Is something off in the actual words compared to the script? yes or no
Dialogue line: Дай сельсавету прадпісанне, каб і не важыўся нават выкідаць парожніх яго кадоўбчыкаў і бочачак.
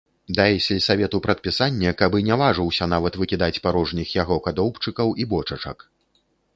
no